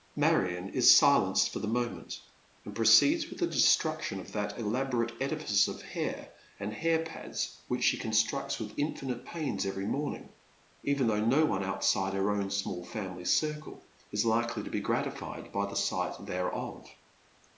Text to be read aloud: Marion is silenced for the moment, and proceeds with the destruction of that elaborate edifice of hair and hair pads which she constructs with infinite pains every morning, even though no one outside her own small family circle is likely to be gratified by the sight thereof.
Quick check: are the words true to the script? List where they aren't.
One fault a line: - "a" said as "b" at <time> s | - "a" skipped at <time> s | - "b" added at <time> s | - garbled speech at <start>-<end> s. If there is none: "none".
none